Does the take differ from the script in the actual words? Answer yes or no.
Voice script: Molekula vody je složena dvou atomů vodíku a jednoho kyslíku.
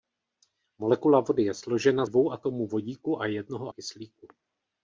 no